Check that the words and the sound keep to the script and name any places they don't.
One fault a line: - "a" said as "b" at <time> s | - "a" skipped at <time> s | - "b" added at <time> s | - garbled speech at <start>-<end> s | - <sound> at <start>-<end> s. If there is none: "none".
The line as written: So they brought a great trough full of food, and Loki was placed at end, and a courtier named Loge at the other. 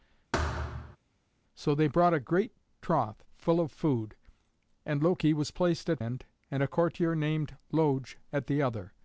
- thud at 0.3-1.0 s